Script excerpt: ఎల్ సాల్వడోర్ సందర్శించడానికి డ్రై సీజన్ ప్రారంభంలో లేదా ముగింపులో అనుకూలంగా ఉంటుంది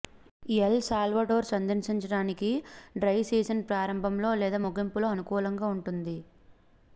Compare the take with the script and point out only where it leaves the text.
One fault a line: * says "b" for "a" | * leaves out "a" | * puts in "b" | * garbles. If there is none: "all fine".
all fine